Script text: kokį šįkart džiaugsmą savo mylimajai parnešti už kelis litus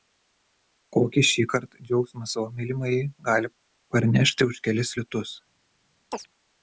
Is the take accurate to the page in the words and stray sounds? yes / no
no